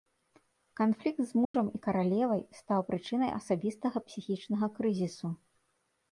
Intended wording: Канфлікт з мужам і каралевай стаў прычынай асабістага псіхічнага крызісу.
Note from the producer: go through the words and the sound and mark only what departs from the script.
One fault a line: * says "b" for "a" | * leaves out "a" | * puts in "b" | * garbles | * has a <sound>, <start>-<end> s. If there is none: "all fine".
* has a dropout, 1.4-1.5 s